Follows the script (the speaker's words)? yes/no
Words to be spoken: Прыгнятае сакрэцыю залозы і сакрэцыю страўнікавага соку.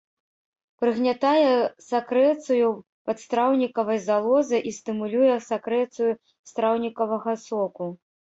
no